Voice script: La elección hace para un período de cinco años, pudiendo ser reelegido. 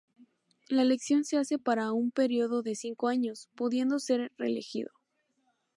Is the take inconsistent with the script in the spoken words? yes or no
yes